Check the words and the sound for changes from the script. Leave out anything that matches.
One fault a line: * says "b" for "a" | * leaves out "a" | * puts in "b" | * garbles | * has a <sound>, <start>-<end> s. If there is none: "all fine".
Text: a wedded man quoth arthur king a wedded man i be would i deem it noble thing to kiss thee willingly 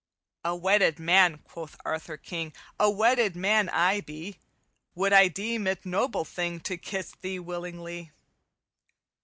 all fine